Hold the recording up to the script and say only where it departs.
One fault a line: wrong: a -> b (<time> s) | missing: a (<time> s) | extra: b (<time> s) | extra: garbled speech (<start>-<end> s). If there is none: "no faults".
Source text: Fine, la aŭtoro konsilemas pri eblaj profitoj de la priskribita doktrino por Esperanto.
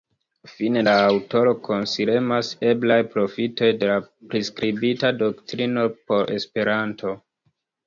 missing: pri (2.5 s)